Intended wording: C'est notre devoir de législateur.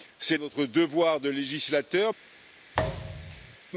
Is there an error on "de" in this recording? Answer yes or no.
no